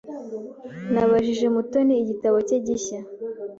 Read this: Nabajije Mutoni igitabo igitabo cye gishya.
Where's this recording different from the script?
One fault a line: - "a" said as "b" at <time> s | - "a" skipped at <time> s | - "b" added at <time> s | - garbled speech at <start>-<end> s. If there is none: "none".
- "igitabo" skipped at 2.4 s